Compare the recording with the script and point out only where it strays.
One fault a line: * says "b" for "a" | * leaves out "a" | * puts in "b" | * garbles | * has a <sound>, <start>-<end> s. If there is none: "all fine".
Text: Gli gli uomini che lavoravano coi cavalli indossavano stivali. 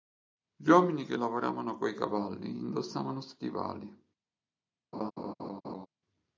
* leaves out "gli"
* has a laugh, 4.9-5.9 s